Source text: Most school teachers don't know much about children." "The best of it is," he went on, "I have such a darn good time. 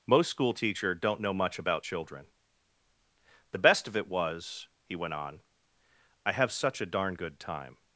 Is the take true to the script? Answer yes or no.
no